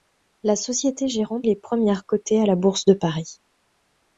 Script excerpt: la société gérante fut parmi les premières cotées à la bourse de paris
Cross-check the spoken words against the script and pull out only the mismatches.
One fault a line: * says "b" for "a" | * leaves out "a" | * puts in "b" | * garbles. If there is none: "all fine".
* leaves out "fut parmi"